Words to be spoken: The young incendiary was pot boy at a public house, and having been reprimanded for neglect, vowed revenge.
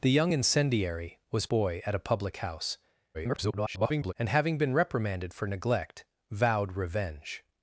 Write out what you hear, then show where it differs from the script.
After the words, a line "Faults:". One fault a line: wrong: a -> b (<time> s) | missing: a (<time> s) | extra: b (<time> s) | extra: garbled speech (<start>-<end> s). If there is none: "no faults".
The young incendiary was boy at a public house, [garbled] and having been reprimanded for neglect, vowed revenge.
Faults:
missing: pot (1.5 s)
extra: garbled speech (3.1-4.1 s)